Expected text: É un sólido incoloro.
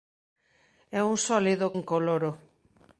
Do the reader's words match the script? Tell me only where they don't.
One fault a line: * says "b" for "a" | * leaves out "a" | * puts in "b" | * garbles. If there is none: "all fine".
all fine